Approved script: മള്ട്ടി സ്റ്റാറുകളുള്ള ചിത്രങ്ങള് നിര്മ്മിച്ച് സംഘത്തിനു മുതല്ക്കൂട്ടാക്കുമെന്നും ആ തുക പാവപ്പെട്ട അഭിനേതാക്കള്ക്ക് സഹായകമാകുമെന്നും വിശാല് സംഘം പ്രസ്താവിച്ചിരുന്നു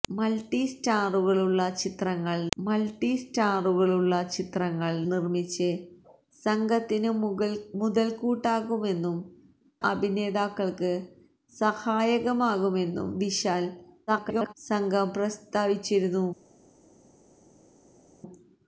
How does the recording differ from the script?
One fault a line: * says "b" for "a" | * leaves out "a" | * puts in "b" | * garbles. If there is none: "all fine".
* puts in "മള്ട്ടി സ്റ്റാറുകളുള്ള ചിത്രങ്ങള്"
* leaves out "ആ തുക പാവപ്പെട്ട"
* garbles